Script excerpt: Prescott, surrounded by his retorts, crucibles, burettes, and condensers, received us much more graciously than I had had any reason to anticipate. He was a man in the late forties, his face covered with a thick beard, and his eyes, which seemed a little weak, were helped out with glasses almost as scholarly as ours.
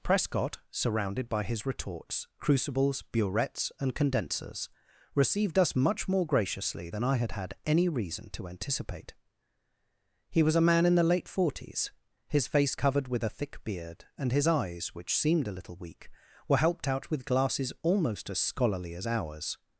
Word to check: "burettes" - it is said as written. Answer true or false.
true